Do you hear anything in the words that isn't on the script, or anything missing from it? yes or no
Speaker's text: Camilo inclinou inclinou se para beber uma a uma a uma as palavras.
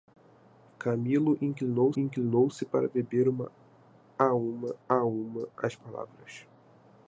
no